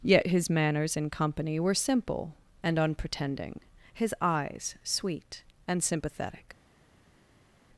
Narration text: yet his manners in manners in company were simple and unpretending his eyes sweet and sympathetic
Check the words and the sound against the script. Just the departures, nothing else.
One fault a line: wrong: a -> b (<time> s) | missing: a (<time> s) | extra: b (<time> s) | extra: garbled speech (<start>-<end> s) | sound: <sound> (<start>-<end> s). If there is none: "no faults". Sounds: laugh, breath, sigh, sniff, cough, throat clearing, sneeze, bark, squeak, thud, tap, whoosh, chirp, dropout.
missing: manners in (1.1 s)